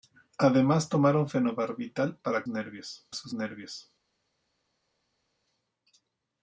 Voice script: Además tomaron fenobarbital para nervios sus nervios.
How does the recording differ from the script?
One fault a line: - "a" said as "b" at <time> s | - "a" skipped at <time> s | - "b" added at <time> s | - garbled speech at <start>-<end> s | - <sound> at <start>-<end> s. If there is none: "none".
none